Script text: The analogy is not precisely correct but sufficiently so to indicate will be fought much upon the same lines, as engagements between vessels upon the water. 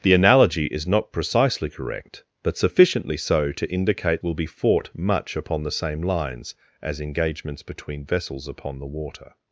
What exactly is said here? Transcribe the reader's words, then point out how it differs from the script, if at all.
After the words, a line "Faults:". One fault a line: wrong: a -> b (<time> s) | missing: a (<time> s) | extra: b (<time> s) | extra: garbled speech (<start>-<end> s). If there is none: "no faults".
The analogy is not precisely correct but sufficiently so to indicate will be fought much upon the same lines, as engagements between vessels upon the water.
Faults:
no faults